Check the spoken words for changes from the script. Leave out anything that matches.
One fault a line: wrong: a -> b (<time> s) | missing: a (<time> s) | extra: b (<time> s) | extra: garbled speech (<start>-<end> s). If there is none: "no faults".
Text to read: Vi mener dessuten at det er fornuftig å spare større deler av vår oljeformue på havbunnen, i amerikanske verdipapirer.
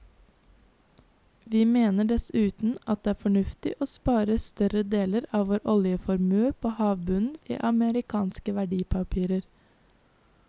no faults